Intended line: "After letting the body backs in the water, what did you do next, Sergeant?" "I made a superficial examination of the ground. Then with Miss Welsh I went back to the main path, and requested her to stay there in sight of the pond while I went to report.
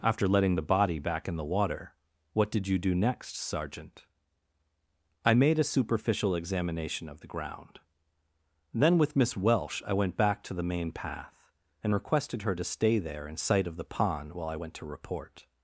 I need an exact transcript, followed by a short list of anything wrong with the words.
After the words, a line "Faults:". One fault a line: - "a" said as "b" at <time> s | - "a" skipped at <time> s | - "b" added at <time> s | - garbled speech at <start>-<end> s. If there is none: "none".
"After letting the body back in the water, what did you do next, Sergeant?" "I made a superficial examination of the ground. Then with Miss Welsh I went back to the main path, and requested her to stay there in sight of the pond while I went to report.
Faults:
- "backs" said as "back" at 1.0 s